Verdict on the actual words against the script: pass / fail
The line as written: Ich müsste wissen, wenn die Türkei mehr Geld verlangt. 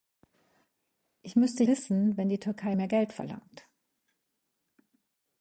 pass